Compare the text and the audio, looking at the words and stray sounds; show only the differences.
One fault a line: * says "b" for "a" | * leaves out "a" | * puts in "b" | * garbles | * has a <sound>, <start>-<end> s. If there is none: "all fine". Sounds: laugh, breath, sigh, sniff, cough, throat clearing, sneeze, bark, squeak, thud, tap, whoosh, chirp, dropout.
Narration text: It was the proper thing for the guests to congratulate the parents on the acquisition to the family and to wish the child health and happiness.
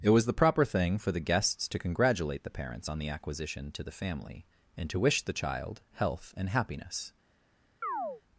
* has a chirp, 7.8-8.2 s